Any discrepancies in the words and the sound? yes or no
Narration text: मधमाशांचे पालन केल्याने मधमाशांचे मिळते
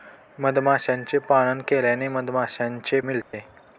yes